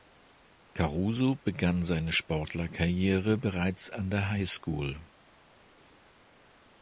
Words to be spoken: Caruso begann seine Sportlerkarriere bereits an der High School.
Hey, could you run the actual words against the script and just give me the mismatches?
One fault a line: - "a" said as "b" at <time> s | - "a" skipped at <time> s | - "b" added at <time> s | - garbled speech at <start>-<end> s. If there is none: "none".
none